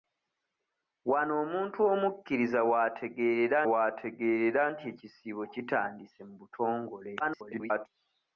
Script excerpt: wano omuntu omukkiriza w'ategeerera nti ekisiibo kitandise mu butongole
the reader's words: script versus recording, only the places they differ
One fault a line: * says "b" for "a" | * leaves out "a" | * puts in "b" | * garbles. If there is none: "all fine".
* puts in "w'ategeerera"
* garbles